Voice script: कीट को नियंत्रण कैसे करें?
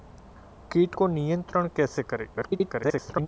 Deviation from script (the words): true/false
true